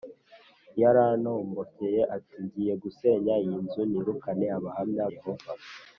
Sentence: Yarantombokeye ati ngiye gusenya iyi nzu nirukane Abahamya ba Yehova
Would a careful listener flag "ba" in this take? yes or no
yes